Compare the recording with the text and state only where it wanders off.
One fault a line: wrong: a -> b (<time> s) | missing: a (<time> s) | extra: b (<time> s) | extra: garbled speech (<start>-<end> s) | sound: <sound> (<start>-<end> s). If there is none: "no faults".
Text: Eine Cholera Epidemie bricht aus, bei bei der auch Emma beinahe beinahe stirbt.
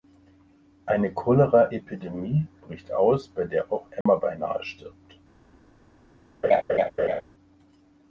missing: bei (3.4 s)
sound: dropout (4.0-4.1 s)
missing: beinahe (4.6 s)
sound: laugh (6.4-7.2 s)